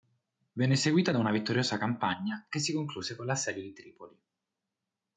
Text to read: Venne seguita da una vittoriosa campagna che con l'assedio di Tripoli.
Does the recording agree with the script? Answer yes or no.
no